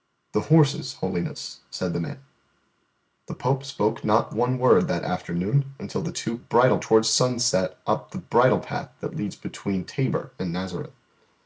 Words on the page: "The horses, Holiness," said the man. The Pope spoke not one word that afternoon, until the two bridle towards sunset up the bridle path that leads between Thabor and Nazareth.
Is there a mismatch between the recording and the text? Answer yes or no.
no